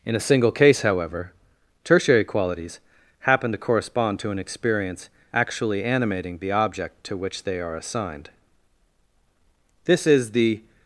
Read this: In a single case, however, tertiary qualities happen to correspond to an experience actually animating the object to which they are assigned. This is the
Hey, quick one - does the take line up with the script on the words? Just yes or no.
yes